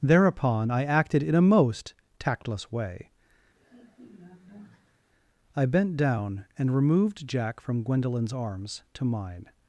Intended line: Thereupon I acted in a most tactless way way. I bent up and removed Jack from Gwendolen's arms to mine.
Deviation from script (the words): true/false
true